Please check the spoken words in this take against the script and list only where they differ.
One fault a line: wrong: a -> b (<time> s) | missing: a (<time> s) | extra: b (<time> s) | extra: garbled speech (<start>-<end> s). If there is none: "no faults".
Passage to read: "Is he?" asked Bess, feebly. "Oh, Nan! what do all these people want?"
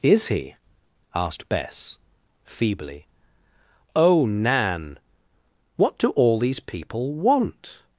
no faults